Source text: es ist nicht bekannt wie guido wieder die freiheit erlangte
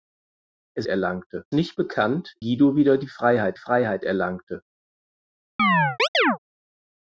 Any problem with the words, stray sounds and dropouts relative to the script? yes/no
yes